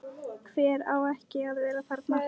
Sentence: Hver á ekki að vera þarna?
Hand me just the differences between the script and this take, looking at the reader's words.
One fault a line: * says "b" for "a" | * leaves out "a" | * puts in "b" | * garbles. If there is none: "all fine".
all fine